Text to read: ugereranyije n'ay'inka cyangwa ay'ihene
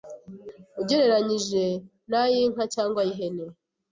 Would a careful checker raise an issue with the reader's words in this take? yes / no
no